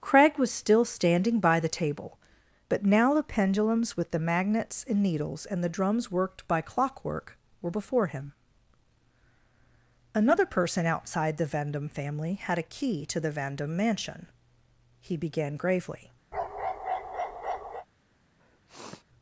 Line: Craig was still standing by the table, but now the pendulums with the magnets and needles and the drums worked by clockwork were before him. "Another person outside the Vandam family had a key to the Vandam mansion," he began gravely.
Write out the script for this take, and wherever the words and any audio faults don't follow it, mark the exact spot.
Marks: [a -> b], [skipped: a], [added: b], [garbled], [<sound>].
Craig was still standing by the table, but now the pendulums with the magnets and needles and the drums worked by clockwork were before him. "Another person outside the Vandam family had a key to the Vandam mansion," he began gravely. [bark] [sniff]